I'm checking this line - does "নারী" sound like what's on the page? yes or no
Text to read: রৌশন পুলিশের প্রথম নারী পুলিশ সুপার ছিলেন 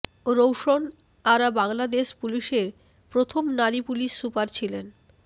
yes